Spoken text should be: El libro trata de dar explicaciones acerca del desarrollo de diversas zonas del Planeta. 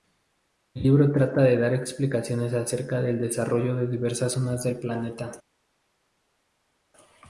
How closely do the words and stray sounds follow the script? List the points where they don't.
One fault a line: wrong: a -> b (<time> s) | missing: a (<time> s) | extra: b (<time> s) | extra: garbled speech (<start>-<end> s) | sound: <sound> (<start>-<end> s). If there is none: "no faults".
no faults